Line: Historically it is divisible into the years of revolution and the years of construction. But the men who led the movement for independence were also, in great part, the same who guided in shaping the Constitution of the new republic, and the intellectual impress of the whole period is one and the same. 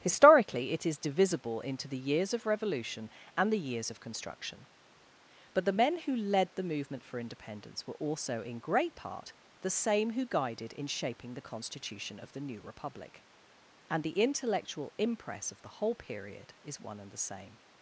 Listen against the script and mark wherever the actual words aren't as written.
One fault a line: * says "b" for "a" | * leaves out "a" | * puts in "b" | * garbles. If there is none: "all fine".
all fine